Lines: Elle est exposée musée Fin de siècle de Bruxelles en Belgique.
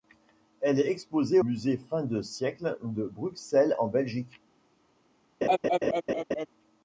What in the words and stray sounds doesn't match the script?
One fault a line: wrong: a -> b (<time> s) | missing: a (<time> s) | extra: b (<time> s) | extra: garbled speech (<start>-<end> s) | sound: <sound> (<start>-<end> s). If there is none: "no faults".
sound: laugh (5.4-6.5 s)